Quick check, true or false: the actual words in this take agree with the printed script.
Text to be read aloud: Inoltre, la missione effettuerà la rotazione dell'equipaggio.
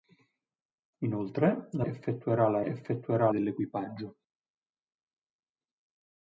false